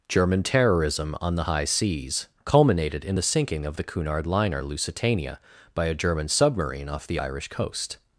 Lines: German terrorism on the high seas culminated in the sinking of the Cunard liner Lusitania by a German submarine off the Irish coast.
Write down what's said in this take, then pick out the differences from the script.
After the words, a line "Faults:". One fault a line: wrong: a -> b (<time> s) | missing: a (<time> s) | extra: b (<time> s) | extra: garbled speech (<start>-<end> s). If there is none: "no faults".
German terrorism on the high seas culminated in the sinking of the Cunard liner Lusitania by a German submarine off the Irish coast.
Faults:
no faults